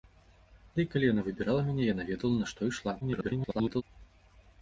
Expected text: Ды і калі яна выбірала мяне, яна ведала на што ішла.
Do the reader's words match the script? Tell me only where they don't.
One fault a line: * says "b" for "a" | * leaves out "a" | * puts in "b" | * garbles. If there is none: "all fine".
* garbles